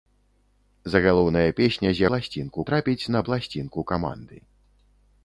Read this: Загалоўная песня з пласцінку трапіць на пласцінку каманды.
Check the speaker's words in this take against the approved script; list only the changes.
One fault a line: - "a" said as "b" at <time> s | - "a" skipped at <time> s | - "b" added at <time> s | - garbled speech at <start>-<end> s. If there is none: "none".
none